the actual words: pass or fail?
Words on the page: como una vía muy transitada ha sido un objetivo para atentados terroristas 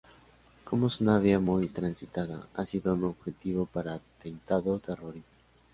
fail